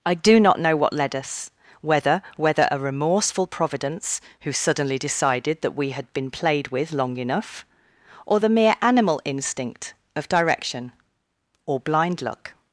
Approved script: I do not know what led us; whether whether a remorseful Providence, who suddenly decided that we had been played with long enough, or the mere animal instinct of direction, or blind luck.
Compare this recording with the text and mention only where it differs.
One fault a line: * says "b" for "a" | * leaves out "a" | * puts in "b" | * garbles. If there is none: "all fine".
all fine